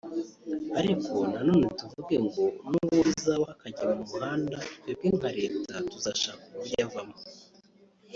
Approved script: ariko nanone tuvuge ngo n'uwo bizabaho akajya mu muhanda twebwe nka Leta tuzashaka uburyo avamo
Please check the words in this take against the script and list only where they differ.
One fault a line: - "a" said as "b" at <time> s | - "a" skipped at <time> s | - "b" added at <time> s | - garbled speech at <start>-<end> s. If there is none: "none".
none